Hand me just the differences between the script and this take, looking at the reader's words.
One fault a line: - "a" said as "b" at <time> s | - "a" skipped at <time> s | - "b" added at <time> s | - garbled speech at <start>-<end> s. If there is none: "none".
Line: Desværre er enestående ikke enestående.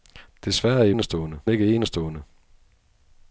none